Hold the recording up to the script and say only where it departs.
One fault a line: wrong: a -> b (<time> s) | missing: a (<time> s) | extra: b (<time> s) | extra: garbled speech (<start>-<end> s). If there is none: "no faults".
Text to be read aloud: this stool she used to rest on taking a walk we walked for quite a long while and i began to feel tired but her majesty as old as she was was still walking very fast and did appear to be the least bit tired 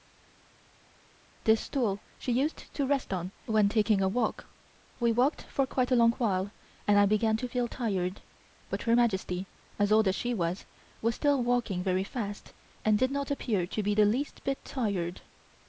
extra: when (3.4 s)
extra: not (13.1 s)